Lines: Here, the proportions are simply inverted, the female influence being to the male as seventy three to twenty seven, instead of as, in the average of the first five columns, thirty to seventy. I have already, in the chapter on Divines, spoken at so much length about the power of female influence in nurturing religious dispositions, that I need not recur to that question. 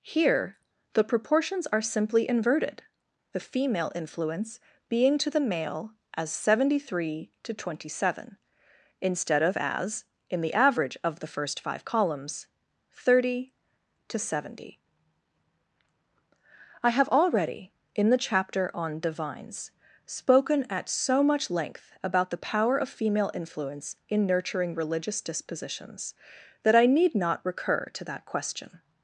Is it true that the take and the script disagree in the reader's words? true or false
false